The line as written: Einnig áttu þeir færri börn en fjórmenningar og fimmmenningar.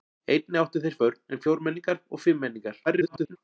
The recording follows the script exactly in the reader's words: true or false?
false